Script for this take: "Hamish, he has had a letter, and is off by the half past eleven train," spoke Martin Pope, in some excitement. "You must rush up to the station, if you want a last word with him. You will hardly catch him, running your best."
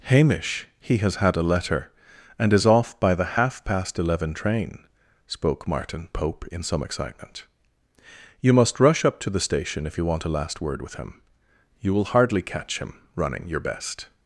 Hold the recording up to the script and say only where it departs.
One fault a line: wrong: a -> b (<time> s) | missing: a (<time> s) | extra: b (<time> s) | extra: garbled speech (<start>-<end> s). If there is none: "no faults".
no faults